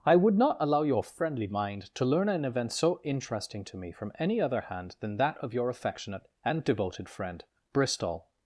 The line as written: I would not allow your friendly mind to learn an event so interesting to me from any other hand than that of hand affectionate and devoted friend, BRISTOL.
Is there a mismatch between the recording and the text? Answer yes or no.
yes